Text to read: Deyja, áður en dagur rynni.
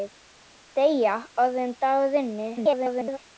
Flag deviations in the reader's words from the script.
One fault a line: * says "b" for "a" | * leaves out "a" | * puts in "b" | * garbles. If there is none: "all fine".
* garbles